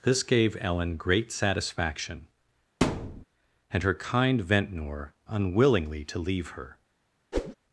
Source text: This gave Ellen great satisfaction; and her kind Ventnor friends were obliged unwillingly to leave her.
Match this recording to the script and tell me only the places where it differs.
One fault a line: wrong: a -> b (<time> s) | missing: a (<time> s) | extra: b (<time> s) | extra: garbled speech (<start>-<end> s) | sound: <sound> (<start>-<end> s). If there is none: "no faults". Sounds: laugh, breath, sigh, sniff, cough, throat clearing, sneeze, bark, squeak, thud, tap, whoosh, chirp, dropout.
sound: thud (2.8-3.2 s)
missing: friends were obliged (5.1 s)
sound: whoosh (7.3-7.6 s)